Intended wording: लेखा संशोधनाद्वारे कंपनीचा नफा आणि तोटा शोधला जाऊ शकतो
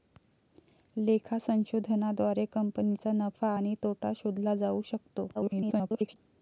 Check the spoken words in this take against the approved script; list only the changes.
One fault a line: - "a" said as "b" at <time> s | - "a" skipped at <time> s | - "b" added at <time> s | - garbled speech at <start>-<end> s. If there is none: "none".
- garbled speech at 5.3-6.2 s